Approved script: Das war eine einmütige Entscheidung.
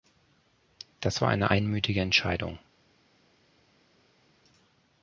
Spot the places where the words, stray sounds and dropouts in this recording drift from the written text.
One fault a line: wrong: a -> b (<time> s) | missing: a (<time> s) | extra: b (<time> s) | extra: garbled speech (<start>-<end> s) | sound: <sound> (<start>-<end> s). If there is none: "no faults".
no faults